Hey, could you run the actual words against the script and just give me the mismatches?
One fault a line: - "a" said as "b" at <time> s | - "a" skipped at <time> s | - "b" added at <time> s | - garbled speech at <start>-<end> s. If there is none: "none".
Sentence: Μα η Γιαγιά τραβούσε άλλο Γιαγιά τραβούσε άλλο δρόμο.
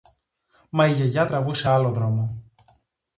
- "Γιαγιά τραβούσε άλλο" skipped at 1.9 s